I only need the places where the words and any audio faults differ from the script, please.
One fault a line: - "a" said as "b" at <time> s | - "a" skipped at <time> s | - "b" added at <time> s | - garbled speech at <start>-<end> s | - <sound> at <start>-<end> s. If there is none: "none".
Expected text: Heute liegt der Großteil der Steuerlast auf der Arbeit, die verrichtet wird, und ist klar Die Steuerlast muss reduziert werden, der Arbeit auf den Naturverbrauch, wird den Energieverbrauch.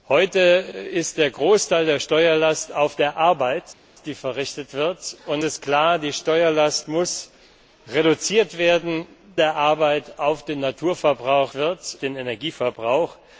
none